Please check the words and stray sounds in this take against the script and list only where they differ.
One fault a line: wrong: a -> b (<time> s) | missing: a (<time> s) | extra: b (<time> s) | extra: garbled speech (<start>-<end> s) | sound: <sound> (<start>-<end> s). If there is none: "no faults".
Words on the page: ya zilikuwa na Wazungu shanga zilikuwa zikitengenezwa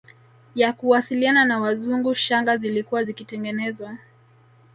wrong: zilikuwa -> kuwasiliana (0.7 s)